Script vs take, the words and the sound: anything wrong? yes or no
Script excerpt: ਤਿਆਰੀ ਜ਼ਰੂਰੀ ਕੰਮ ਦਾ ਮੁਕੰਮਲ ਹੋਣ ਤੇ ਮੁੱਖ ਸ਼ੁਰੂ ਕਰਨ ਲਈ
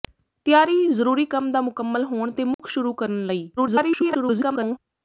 yes